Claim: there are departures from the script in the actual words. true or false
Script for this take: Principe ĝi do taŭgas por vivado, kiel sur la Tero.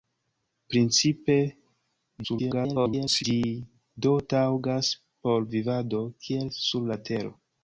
true